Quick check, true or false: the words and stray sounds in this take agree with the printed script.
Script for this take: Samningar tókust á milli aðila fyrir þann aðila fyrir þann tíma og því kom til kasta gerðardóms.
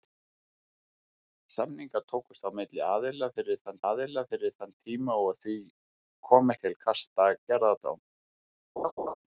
false